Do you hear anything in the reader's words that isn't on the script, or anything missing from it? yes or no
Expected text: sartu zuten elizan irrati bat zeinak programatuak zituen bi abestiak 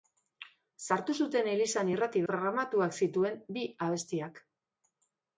yes